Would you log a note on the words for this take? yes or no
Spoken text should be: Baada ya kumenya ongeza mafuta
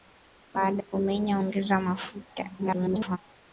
yes